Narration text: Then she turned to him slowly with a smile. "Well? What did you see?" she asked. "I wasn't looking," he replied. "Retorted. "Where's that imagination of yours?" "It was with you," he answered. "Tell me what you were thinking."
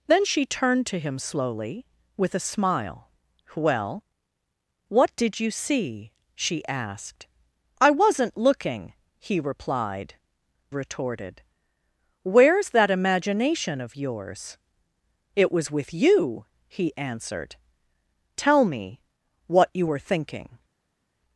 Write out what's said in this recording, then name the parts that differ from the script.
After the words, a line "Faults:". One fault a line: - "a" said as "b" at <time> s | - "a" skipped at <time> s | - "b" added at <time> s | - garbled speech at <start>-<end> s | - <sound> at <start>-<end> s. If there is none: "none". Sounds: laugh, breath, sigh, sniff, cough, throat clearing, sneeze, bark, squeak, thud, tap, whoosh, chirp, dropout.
Then she turned to him slowly with a smile. "Well? What did you see?" she asked. "I wasn't looking," he replied. "Retorted. "Where's that imagination of yours?" "It was with you," he answered. "Tell me what you were thinking."
Faults:
none